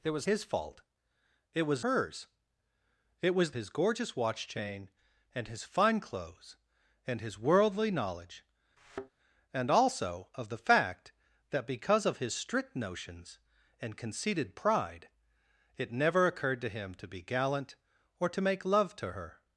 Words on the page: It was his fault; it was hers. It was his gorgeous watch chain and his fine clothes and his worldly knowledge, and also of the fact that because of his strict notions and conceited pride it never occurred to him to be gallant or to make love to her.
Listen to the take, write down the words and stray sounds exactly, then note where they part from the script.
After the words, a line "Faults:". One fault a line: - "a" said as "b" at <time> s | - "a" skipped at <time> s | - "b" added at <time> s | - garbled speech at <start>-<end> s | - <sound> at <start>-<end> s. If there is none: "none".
It was his fault; it was hers. It was his gorgeous watch chain and his fine clothes and his worldly knowledge, and also of the fact that because of his strict notions and conceited pride it never occurred to him to be gallant or to make love to her.
Faults:
- thud at 8.8-9.1 s